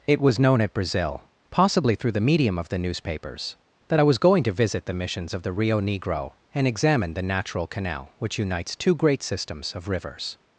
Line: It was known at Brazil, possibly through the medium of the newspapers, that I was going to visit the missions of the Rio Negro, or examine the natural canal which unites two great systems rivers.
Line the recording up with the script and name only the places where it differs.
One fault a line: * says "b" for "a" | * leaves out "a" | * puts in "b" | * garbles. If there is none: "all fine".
* says "and" for "or"
* puts in "of"